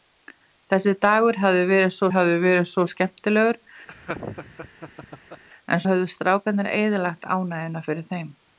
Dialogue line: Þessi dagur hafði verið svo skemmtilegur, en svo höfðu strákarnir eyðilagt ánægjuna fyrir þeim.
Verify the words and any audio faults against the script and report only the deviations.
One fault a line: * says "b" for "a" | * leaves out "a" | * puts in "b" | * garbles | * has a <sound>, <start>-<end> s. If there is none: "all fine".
* puts in "hafði verið svo"
* has a laugh, 3.9-5.4 s
* leaves out "svo"